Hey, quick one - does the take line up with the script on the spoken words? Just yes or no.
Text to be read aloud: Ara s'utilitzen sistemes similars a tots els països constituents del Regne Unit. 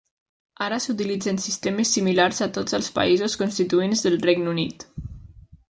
yes